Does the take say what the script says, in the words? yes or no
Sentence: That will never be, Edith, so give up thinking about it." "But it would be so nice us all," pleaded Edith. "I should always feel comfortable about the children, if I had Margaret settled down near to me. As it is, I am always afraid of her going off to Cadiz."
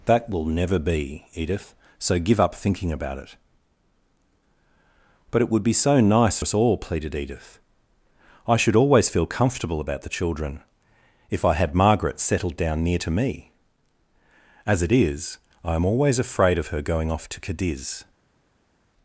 yes